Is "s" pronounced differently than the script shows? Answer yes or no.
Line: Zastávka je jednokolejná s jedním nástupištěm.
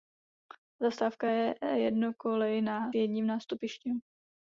yes